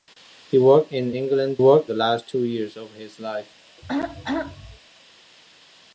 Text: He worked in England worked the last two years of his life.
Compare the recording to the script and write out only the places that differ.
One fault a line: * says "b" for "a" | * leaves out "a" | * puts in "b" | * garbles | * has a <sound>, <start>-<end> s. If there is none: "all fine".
* has a throat clearing, 3.8-4.8 s